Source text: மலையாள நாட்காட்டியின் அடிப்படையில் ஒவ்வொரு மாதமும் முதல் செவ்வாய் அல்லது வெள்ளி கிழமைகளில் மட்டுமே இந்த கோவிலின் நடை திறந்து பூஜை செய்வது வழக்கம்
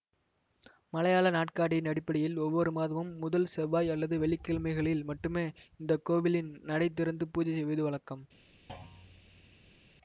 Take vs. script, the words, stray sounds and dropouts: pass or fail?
fail